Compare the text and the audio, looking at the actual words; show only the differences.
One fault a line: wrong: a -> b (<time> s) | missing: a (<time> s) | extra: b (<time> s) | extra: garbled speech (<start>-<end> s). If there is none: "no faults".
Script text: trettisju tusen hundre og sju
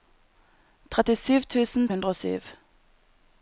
no faults